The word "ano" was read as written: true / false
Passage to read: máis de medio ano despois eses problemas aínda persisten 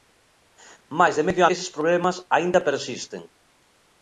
false